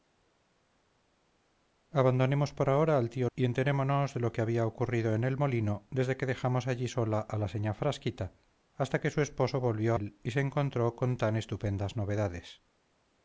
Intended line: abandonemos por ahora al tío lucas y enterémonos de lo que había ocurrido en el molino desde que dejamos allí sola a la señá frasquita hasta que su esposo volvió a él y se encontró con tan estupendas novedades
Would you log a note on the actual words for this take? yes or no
yes